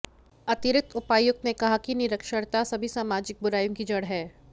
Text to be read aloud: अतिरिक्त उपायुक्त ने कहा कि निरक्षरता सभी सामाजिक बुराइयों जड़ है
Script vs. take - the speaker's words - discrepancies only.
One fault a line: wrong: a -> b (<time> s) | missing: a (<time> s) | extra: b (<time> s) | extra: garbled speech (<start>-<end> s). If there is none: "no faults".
extra: की (3.8 s)